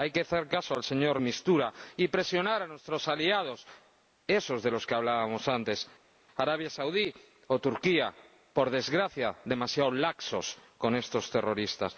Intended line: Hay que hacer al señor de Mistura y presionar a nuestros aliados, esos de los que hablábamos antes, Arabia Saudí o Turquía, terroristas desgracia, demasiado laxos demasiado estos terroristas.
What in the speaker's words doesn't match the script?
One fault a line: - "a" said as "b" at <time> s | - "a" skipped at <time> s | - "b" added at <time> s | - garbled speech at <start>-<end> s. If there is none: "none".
- "caso" added at 0.5 s
- "terroristas" said as "por" at 8.5 s
- "demasiado" said as "con" at 10.8 s